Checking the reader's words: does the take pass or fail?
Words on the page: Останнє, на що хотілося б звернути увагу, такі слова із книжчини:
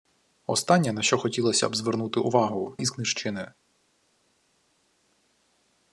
fail